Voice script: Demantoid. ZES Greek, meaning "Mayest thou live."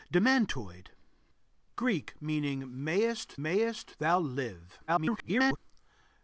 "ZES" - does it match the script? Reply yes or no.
no